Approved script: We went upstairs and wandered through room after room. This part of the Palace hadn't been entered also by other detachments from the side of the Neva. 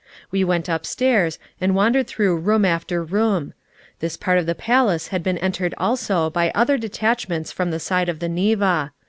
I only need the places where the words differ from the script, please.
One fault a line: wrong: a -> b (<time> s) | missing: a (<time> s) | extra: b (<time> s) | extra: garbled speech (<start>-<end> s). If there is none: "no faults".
wrong: hadn't -> had (5.1 s)